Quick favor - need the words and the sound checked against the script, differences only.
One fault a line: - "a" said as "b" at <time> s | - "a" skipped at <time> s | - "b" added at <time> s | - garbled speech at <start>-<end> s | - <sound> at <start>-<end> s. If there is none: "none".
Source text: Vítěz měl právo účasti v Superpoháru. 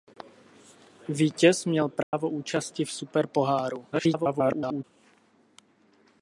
- dropout at 2.0-2.1 s
- garbled speech at 3.9-4.8 s